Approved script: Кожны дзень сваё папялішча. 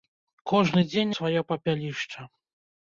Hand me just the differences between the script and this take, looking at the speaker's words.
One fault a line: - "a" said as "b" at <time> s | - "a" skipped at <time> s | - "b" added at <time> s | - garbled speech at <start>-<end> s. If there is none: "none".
none